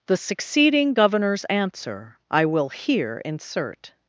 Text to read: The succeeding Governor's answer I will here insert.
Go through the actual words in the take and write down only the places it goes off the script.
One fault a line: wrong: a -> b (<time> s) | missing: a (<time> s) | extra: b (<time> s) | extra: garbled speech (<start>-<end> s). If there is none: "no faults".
no faults